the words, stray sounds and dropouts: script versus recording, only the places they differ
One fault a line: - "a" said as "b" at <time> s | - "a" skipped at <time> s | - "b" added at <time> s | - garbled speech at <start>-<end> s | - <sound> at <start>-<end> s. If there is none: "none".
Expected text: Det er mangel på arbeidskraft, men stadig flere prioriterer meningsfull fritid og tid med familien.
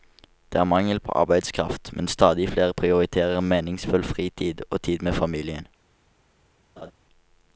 - laugh at 6.8-6.9 s